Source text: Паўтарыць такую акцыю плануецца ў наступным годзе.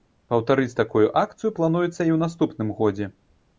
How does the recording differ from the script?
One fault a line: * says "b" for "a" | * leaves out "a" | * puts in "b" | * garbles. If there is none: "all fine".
* puts in "і"